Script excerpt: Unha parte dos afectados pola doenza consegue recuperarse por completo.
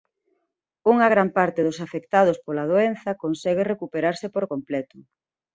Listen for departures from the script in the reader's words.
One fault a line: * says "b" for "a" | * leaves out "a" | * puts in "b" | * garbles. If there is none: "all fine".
* puts in "gran"